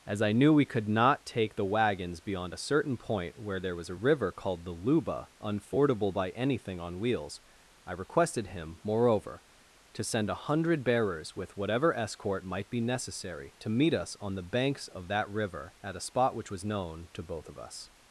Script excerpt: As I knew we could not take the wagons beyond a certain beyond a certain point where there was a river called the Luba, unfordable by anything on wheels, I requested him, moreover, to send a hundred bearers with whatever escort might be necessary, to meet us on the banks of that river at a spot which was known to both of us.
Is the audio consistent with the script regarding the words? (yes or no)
no